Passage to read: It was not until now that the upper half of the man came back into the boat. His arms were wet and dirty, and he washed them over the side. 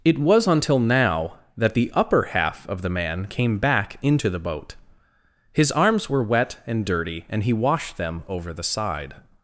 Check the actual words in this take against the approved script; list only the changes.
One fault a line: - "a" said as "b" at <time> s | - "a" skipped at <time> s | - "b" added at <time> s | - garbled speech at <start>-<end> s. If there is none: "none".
- "not" skipped at 0.5 s